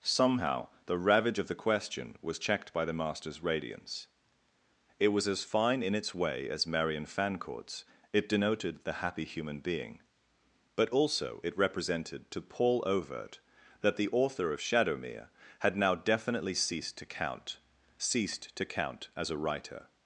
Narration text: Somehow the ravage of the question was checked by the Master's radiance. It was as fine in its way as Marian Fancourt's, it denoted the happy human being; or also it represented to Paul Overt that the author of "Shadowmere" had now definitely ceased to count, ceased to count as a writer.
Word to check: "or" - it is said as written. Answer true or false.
false